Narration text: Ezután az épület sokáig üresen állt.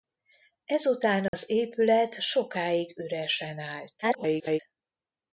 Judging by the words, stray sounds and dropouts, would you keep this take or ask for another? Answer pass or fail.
fail